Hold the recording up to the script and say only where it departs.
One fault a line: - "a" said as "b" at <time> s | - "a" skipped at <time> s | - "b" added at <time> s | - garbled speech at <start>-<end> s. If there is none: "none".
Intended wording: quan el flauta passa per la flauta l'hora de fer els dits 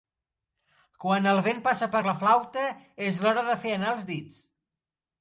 - "flauta" said as "vent" at 1.5 s
- "és" added at 3.1 s
- "anar" added at 3.8 s